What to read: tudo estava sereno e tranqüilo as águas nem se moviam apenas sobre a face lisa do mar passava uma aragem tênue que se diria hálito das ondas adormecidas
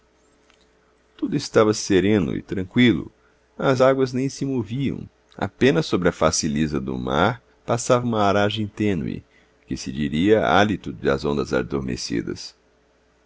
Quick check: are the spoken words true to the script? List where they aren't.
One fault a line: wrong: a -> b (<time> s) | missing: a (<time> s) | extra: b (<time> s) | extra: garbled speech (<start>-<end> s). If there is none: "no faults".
no faults